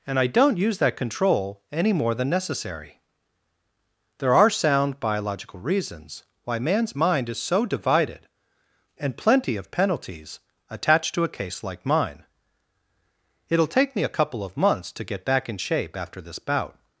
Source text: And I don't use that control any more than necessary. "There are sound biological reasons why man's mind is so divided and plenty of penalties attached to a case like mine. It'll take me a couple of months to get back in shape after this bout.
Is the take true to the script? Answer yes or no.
yes